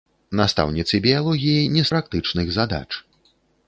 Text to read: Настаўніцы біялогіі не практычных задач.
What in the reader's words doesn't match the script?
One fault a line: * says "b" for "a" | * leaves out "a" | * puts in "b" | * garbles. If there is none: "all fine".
all fine